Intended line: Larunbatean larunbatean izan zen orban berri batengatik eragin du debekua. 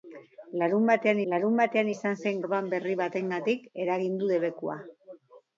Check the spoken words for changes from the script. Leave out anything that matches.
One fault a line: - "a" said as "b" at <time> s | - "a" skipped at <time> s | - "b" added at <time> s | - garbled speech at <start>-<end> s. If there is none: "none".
none